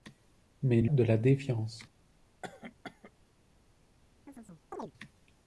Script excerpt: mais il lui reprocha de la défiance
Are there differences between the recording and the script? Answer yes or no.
yes